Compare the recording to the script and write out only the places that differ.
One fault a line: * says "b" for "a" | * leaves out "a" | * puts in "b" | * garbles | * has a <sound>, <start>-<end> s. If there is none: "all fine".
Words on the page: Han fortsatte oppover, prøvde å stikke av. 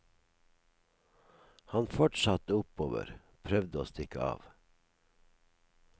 all fine